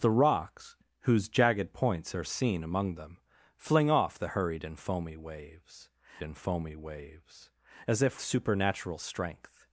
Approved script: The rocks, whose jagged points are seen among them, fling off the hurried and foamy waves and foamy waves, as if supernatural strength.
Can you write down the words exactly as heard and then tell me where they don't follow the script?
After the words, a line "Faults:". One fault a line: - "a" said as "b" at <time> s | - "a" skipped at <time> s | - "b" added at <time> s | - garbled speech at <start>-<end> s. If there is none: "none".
The rocks, whose jagged points are seen among them, fling off the hurried and foamy waves and foamy waves, as if supernatural strength.
Faults:
none